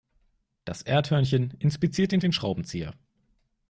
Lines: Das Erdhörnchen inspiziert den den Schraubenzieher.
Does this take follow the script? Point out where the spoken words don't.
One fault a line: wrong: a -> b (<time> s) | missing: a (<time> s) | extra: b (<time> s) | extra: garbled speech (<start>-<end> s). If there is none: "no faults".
no faults